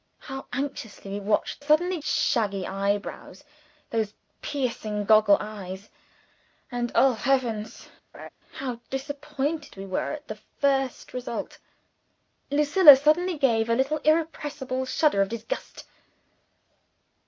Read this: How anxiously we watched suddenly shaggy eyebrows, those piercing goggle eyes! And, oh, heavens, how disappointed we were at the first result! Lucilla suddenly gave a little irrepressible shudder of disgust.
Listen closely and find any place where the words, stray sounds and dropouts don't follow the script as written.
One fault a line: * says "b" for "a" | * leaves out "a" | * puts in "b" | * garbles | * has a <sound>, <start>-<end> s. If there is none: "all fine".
* has a laugh, 8.1-8.3 s